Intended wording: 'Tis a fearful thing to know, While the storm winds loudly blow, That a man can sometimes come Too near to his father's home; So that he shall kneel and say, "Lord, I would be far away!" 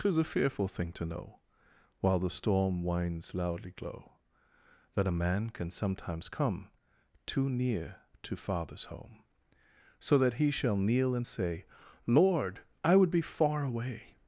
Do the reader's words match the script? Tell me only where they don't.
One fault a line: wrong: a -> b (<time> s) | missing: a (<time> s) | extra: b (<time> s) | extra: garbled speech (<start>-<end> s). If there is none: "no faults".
wrong: blow -> glow (3.7 s)
missing: his (8.3 s)